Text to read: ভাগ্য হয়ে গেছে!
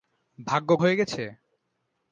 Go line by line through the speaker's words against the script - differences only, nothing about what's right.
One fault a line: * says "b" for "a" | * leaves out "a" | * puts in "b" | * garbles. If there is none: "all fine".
all fine